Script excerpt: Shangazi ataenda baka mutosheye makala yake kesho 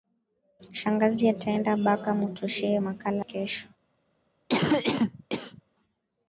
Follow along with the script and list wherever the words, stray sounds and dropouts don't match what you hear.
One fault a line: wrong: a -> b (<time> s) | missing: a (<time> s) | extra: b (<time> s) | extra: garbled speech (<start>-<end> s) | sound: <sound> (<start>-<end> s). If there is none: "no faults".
missing: yake (3.3 s)
sound: cough (4.5-5.6 s)